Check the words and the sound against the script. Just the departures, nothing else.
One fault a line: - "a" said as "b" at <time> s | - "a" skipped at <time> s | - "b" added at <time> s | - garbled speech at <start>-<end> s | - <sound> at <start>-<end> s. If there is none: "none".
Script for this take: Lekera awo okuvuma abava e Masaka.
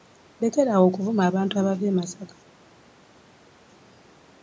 - "abantu" added at 1.3 s